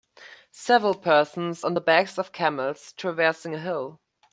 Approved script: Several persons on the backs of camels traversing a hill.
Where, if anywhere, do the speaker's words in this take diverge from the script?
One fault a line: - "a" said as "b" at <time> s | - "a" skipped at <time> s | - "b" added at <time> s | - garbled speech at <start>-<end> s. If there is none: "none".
none